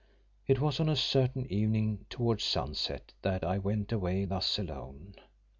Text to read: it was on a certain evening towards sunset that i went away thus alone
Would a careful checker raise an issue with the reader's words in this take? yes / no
no